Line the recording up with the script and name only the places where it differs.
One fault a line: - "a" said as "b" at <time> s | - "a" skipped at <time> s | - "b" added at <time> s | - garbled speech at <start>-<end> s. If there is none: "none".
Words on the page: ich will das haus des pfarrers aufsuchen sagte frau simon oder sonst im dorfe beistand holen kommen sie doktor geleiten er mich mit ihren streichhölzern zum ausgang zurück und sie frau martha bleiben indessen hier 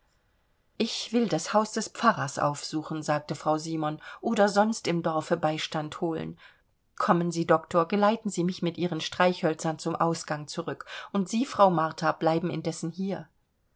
- "er" said as "sie" at 8.3 s